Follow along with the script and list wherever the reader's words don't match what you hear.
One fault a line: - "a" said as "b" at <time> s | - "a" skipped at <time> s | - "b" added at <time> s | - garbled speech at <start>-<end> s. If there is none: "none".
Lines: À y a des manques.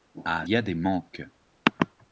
none